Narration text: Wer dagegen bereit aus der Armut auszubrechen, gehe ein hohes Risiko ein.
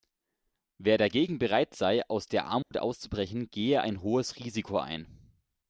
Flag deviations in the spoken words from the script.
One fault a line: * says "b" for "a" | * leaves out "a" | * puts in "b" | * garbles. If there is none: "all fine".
* puts in "sei"